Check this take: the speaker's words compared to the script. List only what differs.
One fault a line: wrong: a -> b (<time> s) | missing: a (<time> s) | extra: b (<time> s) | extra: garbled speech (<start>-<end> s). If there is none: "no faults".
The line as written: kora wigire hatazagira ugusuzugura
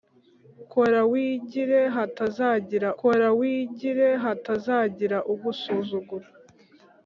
extra: kora wigire hatazagira (3.0 s)